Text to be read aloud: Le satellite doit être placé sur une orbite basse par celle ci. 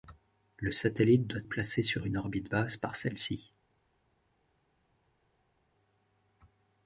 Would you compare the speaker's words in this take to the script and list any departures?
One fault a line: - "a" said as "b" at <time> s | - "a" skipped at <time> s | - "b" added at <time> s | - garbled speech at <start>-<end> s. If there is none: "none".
- "être" skipped at 1.4 s